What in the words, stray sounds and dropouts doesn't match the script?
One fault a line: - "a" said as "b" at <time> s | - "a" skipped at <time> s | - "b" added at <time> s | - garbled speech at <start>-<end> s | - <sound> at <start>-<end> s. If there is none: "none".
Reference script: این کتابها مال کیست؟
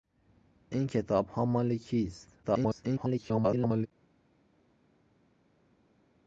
- garbled speech at 2.4-3.9 s